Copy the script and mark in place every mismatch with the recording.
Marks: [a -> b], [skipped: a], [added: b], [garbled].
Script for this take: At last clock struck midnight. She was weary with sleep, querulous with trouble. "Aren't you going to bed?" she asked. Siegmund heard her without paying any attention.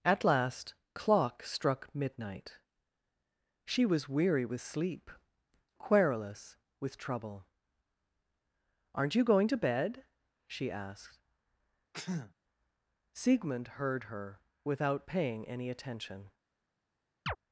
At last clock struck midnight. She was weary with sleep, querulous with trouble. "Aren't you going to bed?" she asked. Siegmund heard her without paying any attention.